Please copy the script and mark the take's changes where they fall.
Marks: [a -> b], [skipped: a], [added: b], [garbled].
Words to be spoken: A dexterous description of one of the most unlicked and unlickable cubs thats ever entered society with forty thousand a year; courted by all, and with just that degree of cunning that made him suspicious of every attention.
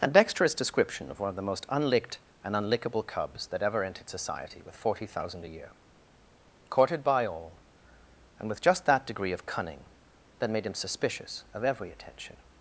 A dexterous description of one of the most unlicked and unlickable cubs [thats -> that] ever entered society with forty thousand a year; courted by all, and with just that degree of cunning that made him suspicious of every attention.